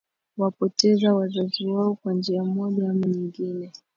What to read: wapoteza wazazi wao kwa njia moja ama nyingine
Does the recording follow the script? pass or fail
pass